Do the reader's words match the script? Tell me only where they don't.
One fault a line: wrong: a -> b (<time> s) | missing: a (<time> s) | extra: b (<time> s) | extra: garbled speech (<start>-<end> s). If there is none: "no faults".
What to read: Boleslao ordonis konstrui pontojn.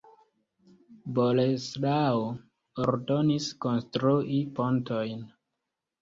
no faults